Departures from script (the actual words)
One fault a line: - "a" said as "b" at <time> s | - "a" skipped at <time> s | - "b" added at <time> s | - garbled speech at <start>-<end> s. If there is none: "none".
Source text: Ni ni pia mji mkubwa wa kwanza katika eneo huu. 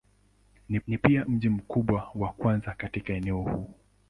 none